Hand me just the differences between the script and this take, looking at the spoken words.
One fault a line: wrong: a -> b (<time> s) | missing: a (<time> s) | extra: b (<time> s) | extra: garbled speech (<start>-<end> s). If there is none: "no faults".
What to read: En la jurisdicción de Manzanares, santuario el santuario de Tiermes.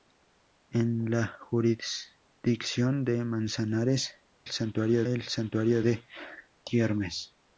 no faults